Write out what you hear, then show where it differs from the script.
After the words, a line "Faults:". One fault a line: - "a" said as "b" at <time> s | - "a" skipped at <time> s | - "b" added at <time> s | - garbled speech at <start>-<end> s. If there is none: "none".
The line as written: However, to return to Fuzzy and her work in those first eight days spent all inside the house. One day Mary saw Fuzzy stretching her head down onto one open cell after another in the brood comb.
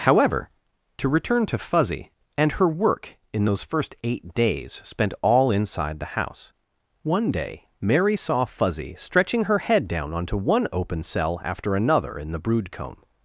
However, to return to Fuzzy and her work in those first eight days spent all inside the house. One day Mary saw Fuzzy stretching her head down onto one open cell after another in the brood comb.
Faults:
none